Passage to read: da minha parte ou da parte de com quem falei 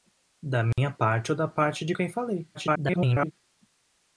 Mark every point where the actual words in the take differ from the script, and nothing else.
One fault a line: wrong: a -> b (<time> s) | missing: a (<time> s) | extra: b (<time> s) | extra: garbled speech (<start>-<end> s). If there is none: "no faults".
missing: com (1.9 s)
extra: garbled speech (2.5-3.3 s)